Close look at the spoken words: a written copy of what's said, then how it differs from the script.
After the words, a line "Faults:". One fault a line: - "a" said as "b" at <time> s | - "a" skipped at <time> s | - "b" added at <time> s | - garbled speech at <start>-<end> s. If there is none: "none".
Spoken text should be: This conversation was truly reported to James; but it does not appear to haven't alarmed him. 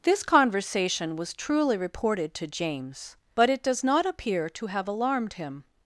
This conversation was truly reported to James; but it does not appear to have alarmed him.
Faults:
- "haven't" said as "have" at 4.7 s